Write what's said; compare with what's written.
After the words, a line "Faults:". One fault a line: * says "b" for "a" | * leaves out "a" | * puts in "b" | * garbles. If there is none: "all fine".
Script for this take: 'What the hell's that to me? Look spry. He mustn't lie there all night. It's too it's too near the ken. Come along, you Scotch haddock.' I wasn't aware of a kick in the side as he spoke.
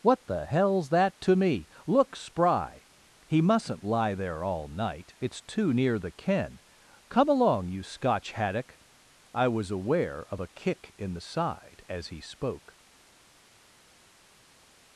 'What the hell's that to me? Look spry. He mustn't lie there all night. It's too near the ken. Come along, you Scotch haddock.' I was aware of a kick in the side as he spoke.
Faults:
* leaves out "it's too"
* says "was" for "wasn't"